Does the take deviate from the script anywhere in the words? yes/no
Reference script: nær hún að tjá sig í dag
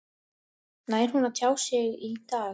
no